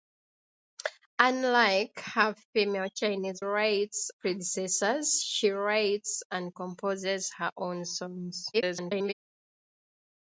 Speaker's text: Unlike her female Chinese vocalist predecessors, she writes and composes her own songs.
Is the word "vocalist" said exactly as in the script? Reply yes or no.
no